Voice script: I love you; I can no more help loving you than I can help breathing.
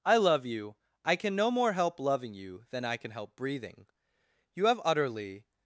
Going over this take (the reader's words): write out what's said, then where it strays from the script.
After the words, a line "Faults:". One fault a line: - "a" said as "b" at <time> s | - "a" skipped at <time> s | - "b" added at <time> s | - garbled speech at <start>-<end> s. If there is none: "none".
I love you; I can no more help loving you than I can help breathing. You have utterly
Faults:
- "You have utterly" added at 4.5 s